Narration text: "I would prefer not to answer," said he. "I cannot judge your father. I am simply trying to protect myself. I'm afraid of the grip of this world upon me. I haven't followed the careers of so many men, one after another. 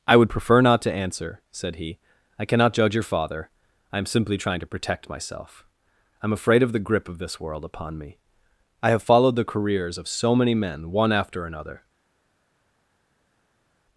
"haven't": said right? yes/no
no